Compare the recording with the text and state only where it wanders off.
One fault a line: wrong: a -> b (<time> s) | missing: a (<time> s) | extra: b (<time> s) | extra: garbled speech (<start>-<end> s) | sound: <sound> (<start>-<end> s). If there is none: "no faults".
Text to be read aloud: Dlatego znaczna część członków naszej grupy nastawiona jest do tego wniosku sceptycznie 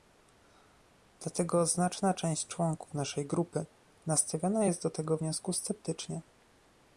no faults